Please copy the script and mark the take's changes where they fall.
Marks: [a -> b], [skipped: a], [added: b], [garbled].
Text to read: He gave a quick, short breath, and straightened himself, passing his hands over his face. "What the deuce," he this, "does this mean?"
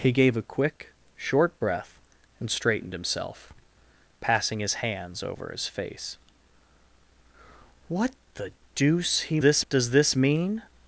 He gave a quick, short breath, and straightened himself, passing his hands over his face. "What the deuce," he this, "does this mean?"